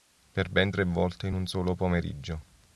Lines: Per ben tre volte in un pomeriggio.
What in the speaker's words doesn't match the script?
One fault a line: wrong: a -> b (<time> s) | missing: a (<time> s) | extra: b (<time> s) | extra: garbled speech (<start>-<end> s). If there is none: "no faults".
extra: solo (1.5 s)